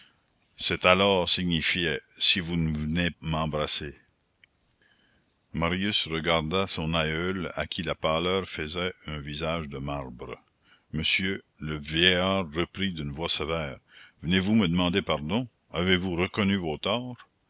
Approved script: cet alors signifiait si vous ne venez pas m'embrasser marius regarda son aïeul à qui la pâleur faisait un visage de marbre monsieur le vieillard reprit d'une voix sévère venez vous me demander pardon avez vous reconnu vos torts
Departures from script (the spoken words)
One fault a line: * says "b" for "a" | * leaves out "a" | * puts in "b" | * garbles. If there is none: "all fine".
* leaves out "pas"